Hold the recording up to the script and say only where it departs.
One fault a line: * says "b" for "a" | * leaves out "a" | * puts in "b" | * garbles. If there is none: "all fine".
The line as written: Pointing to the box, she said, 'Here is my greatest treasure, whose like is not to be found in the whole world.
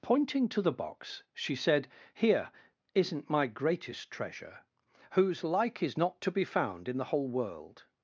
* says "isn't" for "is"